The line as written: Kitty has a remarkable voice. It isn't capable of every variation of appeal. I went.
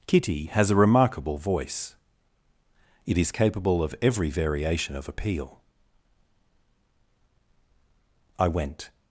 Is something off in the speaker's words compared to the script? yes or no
yes